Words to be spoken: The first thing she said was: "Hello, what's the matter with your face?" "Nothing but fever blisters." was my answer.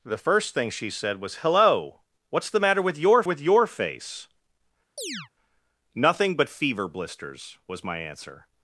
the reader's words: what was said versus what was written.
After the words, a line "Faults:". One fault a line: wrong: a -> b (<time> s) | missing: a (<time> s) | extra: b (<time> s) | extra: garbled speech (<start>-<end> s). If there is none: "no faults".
The first thing she said was: "Hello, what's the matter with your with your face?" "Nothing but fever blisters." was my answer.
Faults:
extra: with your (3.2 s)